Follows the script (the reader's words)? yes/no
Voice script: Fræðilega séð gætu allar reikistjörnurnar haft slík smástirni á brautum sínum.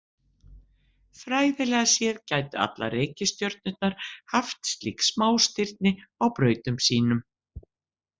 yes